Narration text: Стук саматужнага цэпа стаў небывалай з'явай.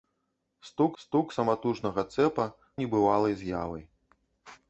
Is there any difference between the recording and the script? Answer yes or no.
yes